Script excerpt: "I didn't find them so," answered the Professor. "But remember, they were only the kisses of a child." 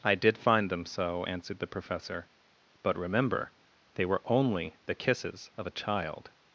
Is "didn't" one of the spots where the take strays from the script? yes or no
yes